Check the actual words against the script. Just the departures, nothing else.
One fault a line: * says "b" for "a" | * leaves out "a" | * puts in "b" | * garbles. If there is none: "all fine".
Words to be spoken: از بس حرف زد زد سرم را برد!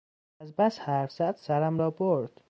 * leaves out "زد"